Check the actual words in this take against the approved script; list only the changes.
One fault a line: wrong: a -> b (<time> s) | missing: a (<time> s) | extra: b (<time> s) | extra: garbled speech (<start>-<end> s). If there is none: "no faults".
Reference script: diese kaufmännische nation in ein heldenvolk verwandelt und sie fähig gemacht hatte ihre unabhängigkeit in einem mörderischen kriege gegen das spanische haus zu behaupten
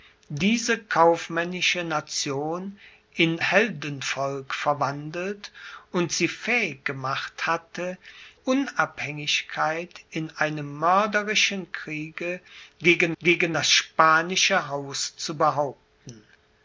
missing: ein (3.4 s)
missing: ihre (8.0 s)
extra: gegen (13.2 s)